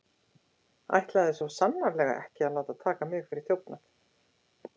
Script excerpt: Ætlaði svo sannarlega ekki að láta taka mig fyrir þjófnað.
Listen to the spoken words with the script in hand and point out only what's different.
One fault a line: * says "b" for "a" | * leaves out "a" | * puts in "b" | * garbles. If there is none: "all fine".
all fine